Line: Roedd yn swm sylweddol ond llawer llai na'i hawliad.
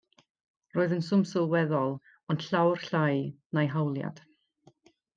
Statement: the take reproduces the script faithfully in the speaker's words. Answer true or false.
true